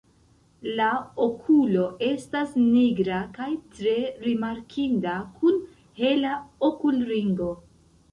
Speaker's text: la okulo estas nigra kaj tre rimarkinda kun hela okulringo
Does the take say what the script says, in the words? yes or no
yes